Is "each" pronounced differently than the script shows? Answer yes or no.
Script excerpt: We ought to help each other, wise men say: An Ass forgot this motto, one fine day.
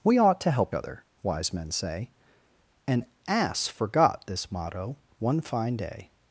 yes